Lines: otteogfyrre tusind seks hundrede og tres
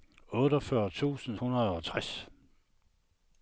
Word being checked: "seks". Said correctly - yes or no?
no